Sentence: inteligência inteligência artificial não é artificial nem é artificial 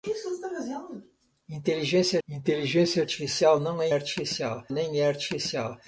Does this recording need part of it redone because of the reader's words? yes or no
no